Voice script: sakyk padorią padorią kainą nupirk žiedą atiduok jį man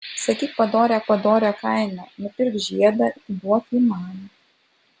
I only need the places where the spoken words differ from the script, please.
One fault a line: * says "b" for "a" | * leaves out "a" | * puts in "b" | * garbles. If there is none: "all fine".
all fine